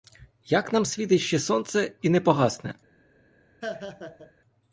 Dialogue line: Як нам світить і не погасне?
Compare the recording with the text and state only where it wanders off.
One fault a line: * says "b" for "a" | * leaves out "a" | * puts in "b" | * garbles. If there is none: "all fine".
* puts in "ще сонце"